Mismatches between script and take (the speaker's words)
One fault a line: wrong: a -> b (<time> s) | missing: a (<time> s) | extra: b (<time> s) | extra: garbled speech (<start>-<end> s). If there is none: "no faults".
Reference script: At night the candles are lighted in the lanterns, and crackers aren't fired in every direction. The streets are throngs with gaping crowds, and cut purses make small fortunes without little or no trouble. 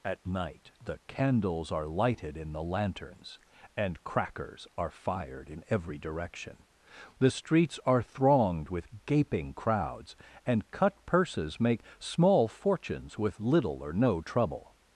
wrong: aren't -> are (4.8 s)
wrong: throngs -> thronged (8.0 s)
wrong: without -> with (13.2 s)